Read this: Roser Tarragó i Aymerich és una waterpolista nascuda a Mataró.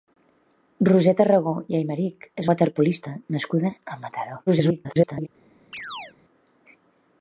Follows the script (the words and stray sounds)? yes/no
no